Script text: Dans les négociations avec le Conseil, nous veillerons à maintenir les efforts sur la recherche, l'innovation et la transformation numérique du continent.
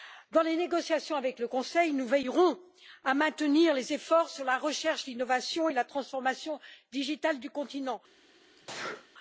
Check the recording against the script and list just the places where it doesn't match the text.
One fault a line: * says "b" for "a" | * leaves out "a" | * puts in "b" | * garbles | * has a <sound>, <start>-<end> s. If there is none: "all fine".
* has a sneeze, 8.6-9.1 s